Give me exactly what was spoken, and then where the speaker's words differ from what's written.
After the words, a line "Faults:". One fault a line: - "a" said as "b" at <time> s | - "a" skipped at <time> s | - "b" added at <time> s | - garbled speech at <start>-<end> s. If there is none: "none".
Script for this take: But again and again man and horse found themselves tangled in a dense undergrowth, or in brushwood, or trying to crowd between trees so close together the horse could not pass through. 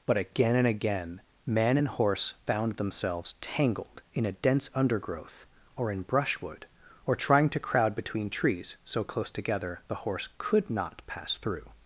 But again and again man and horse found themselves tangled in a dense undergrowth, or in brushwood, or trying to crowd between trees so close together the horse could not pass through.
Faults:
none